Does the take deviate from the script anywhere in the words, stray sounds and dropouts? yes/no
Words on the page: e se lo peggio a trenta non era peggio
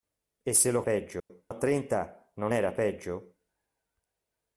yes